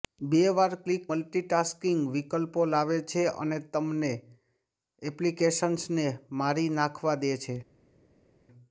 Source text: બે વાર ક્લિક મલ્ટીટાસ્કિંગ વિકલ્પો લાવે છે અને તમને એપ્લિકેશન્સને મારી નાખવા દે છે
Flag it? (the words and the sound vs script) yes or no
no